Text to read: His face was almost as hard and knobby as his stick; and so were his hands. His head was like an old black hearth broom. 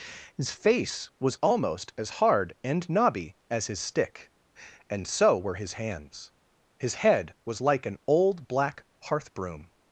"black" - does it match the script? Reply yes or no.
yes